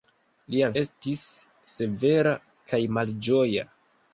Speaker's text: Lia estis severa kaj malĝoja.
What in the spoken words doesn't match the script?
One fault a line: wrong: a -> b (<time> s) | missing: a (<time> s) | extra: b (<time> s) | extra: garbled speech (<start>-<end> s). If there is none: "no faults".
no faults